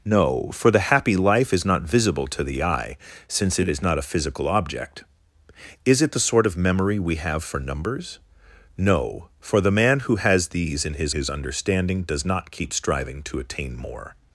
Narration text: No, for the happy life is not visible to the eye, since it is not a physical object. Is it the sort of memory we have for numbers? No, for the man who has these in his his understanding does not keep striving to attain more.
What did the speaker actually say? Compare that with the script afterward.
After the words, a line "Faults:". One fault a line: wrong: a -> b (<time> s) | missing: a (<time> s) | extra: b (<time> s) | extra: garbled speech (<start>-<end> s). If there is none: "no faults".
No, for the happy life is not visible to the eye, since it is not a physical object. Is it the sort of memory we have for numbers? No, for the man who has these in his his understanding does not keep striving to attain more.
Faults:
no faults